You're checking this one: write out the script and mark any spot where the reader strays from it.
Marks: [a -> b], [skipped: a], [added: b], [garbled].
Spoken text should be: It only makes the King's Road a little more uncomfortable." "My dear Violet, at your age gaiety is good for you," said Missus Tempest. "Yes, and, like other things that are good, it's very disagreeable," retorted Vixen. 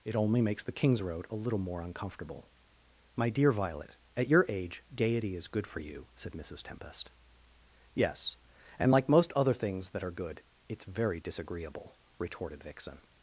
It only makes the King's Road a little more uncomfortable." "My dear Violet, at your age gaiety is good for you," said Missus Tempest. "Yes, and, like [added: most] other things that are good, it's very disagreeable," retorted Vixen.